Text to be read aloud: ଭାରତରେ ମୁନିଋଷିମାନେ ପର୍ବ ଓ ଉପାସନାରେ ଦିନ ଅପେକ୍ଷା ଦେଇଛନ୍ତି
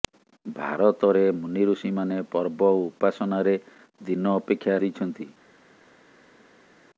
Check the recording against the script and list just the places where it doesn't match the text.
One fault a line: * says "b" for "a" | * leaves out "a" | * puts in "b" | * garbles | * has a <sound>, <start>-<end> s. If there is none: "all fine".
all fine